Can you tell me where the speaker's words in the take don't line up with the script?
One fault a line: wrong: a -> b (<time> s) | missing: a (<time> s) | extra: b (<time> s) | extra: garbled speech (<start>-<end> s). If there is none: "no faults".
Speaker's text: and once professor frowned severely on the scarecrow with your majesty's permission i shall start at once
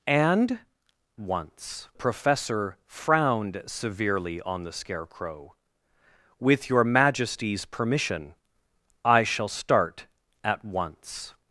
no faults